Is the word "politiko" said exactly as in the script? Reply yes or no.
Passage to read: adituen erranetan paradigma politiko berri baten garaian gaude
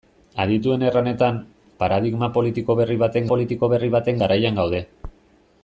yes